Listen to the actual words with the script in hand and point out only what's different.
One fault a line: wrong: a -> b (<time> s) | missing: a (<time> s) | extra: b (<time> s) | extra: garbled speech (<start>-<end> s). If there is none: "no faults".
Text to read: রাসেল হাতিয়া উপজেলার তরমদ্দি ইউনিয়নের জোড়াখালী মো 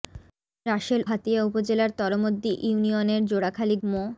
no faults